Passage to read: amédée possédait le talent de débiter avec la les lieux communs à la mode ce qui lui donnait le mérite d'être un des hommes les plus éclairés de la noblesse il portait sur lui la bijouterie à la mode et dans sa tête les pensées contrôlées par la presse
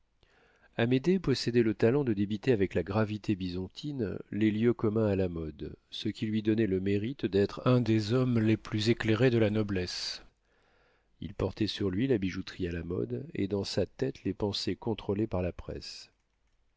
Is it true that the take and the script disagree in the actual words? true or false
true